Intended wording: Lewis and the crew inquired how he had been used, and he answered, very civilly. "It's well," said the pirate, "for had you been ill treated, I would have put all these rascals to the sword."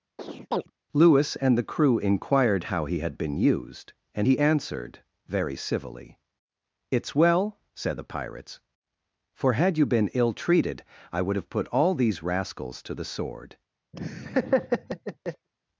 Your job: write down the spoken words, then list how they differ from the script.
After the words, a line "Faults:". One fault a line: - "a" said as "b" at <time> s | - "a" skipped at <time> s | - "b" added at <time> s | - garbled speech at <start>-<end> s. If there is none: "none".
Lewis and the crew inquired how he had been used, and he answered, very civilly. "It's well," said the pirates, "for had you been ill treated, I would have put all these rascals to the sword."
Faults:
- "pirate" said as "pirates" at 8.0 s